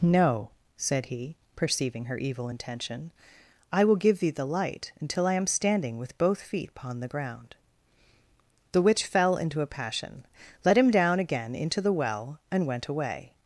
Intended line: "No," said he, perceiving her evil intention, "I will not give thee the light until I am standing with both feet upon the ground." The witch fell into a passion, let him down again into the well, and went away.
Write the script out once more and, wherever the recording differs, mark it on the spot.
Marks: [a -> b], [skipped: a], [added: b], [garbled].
"No," said he, perceiving her evil intention, "I will [skipped: not] give thee the light until I am standing with both feet upon the ground." The witch fell into a passion, let him down again into the well, and went away.